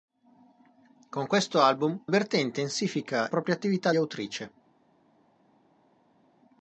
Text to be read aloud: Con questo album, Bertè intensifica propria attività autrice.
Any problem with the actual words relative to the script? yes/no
no